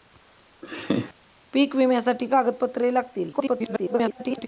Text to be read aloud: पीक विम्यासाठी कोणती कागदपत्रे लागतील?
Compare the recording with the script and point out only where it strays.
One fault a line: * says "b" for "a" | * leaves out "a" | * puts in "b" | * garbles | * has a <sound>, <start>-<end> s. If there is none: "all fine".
* has a laugh, 0.6-1.1 s
* leaves out "कोणती"
* garbles